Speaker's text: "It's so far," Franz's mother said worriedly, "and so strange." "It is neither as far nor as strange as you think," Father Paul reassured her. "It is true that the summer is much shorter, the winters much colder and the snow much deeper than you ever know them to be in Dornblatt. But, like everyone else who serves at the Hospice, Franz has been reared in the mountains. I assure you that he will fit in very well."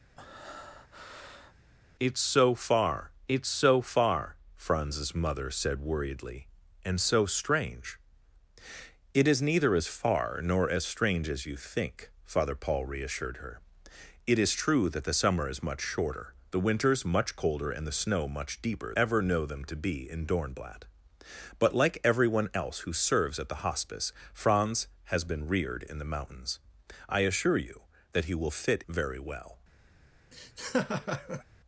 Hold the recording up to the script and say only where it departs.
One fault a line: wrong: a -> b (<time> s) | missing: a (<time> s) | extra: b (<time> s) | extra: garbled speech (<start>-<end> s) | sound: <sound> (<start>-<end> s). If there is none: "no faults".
sound: breath (0.2-1.5 s)
extra: it's so far (3.3 s)
missing: than you (19.0 s)
missing: in (28.8 s)
sound: laugh (30.3-31.4 s)